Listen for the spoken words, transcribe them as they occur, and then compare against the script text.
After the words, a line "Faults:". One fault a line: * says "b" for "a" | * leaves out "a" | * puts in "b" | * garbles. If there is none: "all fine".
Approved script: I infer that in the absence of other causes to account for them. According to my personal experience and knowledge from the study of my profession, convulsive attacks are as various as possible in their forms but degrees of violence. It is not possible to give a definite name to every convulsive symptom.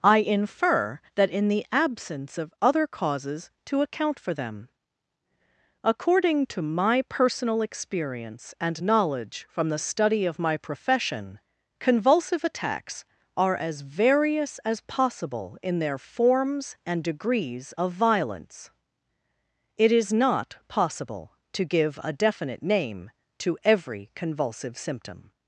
I infer that in the absence of other causes to account for them. According to my personal experience and knowledge from the study of my profession, convulsive attacks are as various as possible in their forms and degrees of violence. It is not possible to give a definite name to every convulsive symptom.
Faults:
* says "and" for "but"